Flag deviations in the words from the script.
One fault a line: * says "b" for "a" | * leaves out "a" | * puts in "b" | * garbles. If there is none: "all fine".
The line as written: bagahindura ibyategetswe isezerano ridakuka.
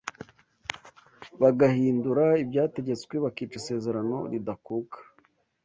* puts in "bakica"